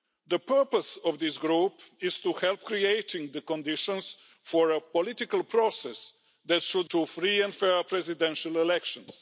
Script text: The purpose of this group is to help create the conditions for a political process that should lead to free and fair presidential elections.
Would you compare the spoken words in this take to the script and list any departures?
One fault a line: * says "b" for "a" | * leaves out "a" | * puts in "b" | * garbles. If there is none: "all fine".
* leaves out "lead"